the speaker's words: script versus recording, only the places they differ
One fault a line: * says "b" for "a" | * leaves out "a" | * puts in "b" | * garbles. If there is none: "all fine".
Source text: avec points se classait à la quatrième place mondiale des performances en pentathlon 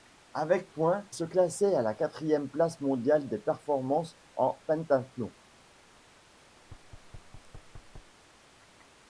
all fine